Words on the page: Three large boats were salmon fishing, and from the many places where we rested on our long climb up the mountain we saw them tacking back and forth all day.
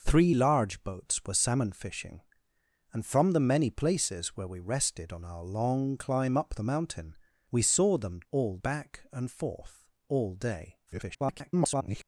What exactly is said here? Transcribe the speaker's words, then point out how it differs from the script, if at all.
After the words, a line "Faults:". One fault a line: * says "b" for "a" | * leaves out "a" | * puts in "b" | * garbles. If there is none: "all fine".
Three large boats were salmon fishing, and from the many places where we rested on our long climb up the mountain we saw them all back and forth all day. [garbled]
Faults:
* says "all" for "tacking"
* garbles